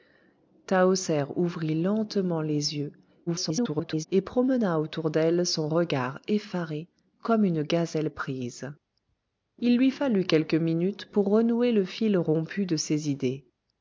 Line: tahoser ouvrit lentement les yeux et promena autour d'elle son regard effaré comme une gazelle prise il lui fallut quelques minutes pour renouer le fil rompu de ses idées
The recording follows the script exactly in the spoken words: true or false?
false